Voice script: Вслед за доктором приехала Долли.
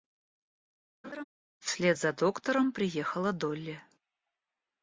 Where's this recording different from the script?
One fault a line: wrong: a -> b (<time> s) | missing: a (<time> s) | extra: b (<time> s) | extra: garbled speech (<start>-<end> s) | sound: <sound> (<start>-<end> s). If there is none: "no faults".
sound: laugh (1.0-1.2 s)